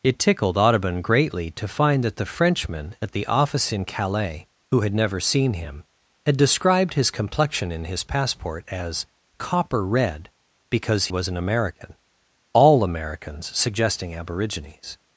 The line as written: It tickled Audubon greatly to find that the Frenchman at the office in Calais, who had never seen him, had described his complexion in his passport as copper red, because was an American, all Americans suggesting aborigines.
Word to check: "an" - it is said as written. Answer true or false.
true